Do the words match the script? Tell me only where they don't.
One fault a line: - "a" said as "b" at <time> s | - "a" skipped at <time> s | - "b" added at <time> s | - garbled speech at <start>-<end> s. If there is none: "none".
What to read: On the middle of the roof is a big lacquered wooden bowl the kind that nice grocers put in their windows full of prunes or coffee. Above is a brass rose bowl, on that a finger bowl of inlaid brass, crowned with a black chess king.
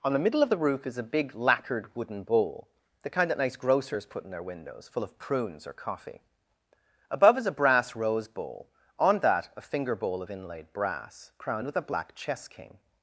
none